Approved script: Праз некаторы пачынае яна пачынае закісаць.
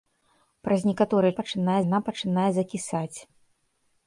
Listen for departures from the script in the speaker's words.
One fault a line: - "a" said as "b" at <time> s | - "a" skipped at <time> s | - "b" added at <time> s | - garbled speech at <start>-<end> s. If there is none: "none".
none